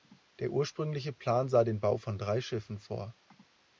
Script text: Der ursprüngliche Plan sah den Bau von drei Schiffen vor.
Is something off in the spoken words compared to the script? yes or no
no